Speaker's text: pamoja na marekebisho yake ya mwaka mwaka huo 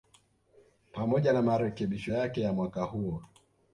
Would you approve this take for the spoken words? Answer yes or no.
no